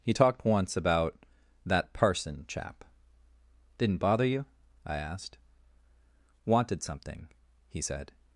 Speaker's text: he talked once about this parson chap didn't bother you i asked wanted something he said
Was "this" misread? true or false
true